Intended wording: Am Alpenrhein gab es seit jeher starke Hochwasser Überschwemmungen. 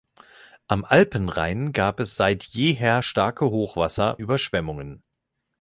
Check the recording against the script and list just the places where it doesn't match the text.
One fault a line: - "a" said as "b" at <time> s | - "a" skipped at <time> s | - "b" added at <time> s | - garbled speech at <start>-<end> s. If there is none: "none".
none